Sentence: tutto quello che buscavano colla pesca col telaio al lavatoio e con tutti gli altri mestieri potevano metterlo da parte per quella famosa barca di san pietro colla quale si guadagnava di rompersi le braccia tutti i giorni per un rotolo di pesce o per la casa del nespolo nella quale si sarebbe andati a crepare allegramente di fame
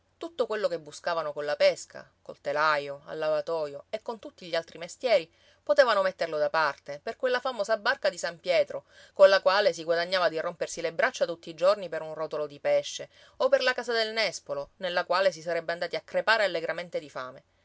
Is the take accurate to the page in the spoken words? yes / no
yes